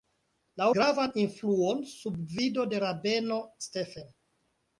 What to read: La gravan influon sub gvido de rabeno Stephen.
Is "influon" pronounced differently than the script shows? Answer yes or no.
no